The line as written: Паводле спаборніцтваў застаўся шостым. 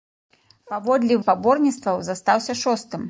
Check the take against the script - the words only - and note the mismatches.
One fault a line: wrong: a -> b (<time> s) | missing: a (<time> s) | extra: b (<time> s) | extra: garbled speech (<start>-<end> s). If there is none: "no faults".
no faults